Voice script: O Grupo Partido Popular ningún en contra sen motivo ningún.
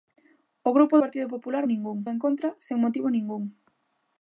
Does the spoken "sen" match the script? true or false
true